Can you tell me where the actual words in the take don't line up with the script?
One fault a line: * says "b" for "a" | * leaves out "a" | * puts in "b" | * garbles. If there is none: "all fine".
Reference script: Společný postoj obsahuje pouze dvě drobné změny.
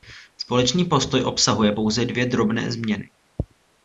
all fine